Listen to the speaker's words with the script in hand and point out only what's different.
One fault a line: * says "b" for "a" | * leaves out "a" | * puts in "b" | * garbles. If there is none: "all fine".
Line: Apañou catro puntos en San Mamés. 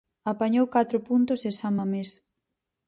all fine